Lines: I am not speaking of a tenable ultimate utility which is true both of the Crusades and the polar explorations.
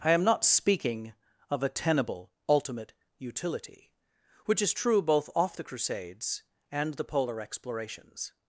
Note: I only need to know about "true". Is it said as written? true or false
true